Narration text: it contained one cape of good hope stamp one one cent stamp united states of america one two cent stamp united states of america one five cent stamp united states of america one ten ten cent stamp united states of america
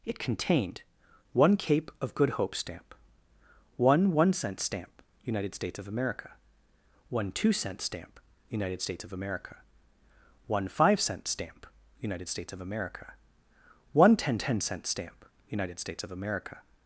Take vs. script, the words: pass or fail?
pass